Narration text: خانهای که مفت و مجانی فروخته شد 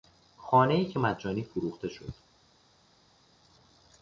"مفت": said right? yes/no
no